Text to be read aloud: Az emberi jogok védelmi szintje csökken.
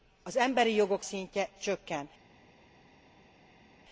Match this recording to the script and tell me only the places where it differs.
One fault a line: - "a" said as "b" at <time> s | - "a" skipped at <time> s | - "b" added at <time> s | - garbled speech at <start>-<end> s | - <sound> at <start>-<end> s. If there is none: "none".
- "védelmi" skipped at 1.1 s